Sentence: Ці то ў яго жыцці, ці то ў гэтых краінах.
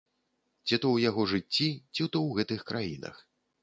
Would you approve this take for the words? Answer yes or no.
yes